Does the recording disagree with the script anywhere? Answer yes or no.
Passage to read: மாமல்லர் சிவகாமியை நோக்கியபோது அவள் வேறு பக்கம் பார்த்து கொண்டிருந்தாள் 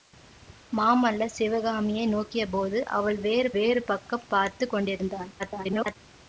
yes